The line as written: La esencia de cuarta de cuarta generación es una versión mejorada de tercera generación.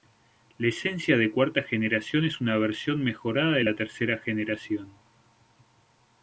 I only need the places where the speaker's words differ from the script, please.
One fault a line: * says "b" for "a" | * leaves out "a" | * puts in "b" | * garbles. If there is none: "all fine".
* leaves out "de cuarta"
* puts in "la"